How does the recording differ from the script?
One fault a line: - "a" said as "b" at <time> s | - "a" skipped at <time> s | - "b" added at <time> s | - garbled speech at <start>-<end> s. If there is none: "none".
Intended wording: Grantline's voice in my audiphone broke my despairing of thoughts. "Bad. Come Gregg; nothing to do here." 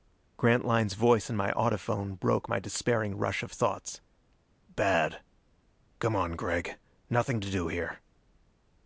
- "rush" added at 3.2 s
- "on" added at 6.1 s